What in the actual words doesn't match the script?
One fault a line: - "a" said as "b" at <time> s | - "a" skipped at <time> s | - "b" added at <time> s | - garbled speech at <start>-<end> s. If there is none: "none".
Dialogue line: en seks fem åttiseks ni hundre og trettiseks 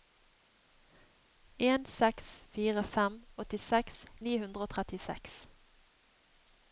- "fire" added at 2.5 s